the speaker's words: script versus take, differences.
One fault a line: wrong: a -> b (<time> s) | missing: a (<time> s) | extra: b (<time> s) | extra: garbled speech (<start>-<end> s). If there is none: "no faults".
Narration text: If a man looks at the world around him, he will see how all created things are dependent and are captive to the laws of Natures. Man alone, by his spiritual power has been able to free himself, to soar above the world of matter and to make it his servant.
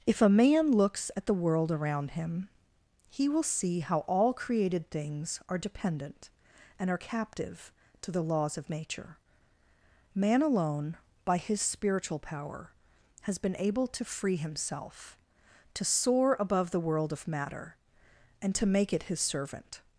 wrong: Natures -> Nature (8.7 s)